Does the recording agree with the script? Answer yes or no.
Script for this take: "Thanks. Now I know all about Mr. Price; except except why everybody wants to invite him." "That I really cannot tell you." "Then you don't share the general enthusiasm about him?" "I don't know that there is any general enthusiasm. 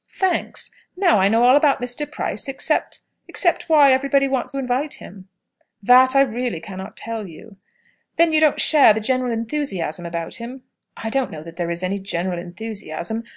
no